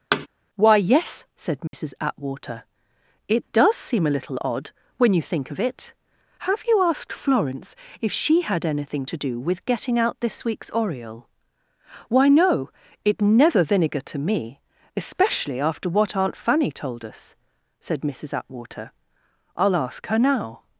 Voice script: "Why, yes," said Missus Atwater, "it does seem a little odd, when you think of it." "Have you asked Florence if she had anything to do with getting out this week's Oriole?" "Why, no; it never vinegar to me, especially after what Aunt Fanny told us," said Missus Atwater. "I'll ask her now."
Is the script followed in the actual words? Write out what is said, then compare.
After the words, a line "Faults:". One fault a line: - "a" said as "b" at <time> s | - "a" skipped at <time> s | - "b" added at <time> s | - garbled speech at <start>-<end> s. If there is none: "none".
"Why, yes," said Missus Atwater, "it does seem a little odd, when you think of it." "Have you asked Florence if she had anything to do with getting out this week's Oriole?" "Why, no; it never vinegar to me, especially after what Aunt Fanny told us," said Missus Atwater. "I'll ask her now."
Faults:
none